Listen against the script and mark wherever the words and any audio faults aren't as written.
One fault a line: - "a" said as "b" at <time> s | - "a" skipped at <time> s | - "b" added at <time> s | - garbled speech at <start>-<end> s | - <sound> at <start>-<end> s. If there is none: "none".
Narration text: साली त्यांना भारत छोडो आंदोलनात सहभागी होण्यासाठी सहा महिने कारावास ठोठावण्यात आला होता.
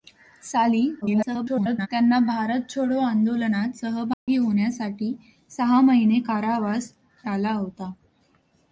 - garbled speech at 1.0-1.9 s
- dropout at 4.1-4.3 s
- "ठोठावण्यात" skipped at 6.9 s